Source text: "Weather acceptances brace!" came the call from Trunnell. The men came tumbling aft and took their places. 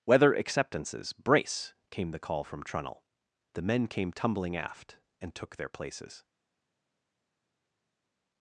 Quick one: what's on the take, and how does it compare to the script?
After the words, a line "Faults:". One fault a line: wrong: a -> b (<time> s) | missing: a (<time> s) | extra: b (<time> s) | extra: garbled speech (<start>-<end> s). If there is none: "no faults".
"Weather acceptances brace!" came the call from Trunnell. The men came tumbling aft and took their places.
Faults:
no faults